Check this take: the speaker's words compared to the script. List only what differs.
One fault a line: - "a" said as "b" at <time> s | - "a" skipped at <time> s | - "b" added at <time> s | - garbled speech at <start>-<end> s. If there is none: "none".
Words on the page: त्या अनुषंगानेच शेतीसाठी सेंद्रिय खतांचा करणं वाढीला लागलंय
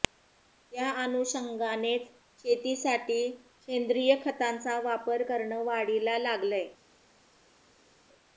- "वापर" added at 4.8 s